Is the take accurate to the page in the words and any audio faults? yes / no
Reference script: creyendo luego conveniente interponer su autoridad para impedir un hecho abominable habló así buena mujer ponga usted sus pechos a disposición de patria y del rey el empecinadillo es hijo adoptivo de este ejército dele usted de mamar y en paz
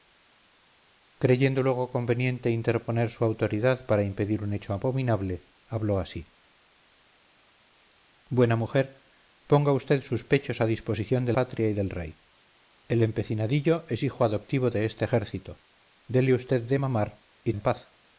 yes